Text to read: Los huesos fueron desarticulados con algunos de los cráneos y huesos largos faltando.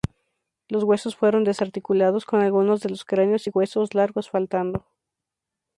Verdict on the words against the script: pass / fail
pass